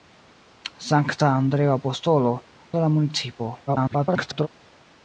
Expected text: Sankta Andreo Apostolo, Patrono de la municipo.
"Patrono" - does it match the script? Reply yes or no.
no